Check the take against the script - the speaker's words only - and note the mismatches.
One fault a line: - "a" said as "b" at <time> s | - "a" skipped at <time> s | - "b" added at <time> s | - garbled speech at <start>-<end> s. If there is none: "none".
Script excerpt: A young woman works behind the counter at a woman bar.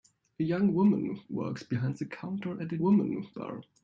none